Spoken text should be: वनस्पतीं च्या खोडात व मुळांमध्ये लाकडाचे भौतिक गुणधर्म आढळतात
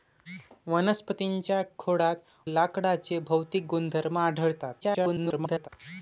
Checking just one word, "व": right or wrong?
wrong